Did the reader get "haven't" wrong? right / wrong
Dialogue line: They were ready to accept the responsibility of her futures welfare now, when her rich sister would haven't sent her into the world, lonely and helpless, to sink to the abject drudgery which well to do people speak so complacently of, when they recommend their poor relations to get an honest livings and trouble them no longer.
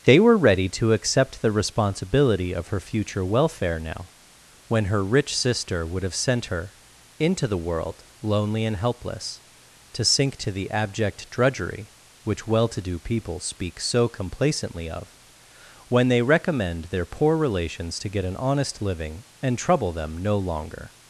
wrong